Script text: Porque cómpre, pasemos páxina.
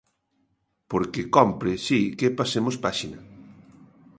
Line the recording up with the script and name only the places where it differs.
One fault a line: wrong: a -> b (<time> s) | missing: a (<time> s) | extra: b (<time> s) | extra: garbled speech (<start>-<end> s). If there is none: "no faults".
extra: si que (1.9 s)